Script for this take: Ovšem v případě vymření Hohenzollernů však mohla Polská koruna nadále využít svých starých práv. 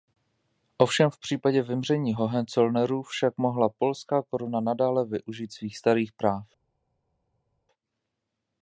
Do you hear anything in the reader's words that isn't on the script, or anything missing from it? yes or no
no